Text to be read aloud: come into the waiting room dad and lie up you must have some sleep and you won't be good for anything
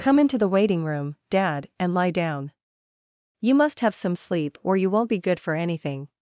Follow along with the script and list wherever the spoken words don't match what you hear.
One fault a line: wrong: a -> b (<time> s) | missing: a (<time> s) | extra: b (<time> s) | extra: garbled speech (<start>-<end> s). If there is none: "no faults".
wrong: up -> down (2.1 s)
wrong: and -> or (4.6 s)